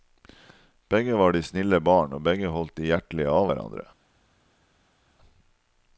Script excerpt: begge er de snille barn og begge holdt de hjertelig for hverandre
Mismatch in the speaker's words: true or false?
true